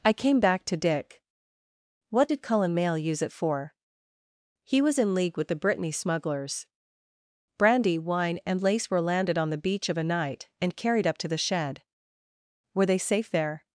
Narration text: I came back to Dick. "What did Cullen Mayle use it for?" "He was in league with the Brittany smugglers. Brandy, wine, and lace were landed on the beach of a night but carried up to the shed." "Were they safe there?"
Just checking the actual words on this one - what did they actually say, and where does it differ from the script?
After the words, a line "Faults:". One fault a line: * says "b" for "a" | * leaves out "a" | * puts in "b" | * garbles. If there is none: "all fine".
I came back to Dick. "What did Cullen Mayle use it for?" "He was in league with the Brittany smugglers. Brandy, wine, and lace were landed on the beach of a night and carried up to the shed." "Were they safe there?"
Faults:
* says "and" for "but"